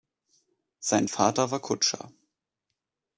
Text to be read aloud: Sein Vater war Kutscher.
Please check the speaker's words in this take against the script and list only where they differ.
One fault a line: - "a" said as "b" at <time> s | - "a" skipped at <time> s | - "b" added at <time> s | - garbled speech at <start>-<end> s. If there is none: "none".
none